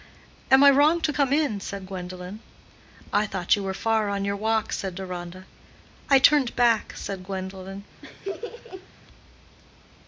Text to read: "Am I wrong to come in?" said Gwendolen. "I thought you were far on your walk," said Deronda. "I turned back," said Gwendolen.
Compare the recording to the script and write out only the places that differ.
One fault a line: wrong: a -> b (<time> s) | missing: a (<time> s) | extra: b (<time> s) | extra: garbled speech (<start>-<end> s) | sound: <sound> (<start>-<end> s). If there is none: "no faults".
sound: laugh (8.0-8.9 s)